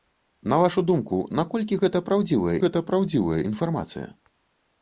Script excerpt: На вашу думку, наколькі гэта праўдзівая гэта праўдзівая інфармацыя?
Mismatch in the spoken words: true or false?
false